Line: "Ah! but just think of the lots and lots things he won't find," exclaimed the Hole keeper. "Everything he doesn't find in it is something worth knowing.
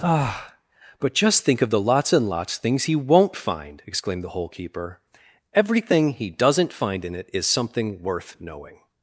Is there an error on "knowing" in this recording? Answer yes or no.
no